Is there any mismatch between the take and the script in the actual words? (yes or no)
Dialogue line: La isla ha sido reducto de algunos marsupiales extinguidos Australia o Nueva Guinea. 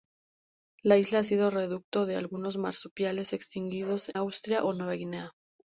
no